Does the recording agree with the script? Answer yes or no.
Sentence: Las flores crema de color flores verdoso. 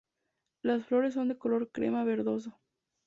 no